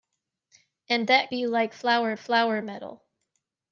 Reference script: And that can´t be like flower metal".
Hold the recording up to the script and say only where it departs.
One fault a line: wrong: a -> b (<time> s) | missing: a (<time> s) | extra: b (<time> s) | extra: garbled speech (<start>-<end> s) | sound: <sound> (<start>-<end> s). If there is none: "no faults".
missing: can´t (1.3 s)
extra: flower (2.2 s)